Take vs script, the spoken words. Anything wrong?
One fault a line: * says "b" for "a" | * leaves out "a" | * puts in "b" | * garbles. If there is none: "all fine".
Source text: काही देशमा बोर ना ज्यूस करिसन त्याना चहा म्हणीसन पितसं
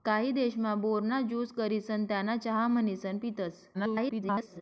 * garbles